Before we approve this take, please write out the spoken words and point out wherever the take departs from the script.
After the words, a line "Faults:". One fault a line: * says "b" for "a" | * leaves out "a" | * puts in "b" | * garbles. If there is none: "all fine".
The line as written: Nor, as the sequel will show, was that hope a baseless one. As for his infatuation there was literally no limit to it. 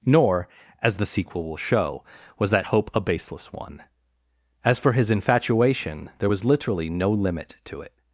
Nor, as the sequel will show, was that hope a baseless one. As for his infatuation there was literally no limit to it.
Faults:
all fine